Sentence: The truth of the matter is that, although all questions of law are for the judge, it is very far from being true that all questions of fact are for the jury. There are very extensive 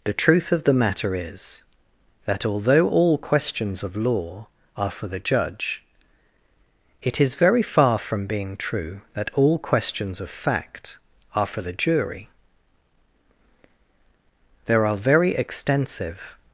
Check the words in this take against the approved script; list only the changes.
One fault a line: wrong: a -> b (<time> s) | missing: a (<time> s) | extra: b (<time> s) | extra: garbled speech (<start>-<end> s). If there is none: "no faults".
no faults